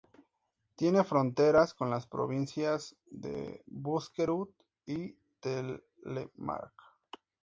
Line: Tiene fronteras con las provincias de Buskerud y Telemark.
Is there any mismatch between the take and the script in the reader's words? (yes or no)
no